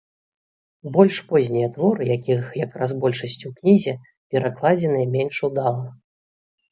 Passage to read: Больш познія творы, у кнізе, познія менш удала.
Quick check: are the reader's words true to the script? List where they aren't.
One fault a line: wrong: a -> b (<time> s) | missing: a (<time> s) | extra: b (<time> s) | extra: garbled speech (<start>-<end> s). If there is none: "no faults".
extra: якіх якраз большасць (2.2 s)
wrong: познія -> перакладзеныя (4.3 s)